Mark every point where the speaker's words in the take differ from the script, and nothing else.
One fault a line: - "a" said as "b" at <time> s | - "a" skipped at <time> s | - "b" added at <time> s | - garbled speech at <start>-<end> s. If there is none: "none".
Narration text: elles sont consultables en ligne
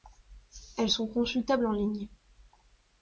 none